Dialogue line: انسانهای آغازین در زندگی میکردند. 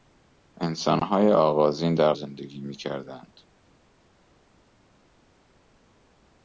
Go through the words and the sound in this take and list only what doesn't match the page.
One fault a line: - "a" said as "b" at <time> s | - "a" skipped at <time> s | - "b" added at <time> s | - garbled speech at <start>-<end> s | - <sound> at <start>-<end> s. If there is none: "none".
none